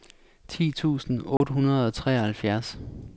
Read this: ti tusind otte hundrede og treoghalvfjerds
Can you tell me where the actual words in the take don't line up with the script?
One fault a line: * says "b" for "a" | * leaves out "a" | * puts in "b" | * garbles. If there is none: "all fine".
all fine